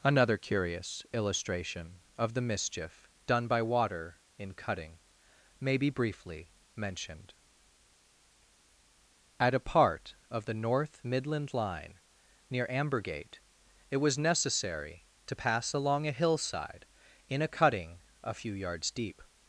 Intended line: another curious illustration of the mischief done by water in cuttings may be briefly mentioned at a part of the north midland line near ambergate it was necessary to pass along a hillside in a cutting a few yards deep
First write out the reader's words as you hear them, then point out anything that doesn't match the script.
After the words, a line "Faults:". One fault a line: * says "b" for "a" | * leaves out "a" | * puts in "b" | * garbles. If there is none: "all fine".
another curious illustration of the mischief done by water in cutting may be briefly mentioned at a part of the north midland line near ambergate it was necessary to pass along a hillside in a cutting a few yards deep
Faults:
* says "cutting" for "cuttings"